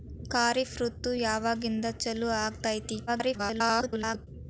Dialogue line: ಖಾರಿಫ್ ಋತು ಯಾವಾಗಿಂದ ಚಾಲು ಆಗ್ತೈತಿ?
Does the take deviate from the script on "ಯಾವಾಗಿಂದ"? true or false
false